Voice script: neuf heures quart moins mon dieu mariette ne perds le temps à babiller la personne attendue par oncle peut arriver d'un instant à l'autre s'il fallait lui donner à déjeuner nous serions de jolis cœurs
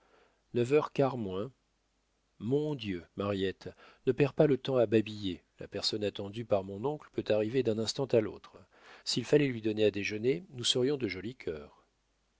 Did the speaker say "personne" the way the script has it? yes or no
yes